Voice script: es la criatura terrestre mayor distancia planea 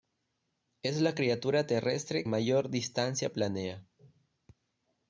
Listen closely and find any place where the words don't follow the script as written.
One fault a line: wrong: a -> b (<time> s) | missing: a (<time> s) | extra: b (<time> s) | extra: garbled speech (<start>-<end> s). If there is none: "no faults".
no faults